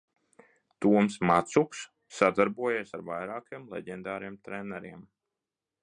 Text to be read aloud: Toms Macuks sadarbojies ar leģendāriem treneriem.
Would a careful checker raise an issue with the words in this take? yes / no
yes